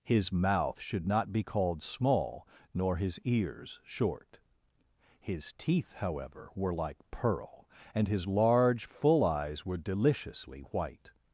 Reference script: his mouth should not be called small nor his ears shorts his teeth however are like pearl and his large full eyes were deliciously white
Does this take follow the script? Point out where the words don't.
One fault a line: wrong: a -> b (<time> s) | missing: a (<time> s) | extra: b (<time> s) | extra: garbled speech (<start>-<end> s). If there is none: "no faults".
wrong: shorts -> short (3.8 s)
wrong: are -> were (6.6 s)